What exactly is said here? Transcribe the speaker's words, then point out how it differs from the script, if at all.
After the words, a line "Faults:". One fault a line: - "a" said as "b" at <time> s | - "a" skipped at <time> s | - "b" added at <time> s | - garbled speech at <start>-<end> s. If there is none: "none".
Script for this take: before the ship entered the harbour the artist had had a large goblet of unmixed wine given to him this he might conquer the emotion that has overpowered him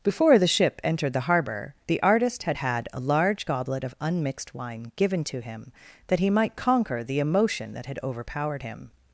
before the ship entered the harbour the artist had had a large goblet of unmixed wine given to him that he might conquer the emotion that had overpowered him
Faults:
- "this" said as "that" at 6.1 s
- "has" said as "had" at 7.9 s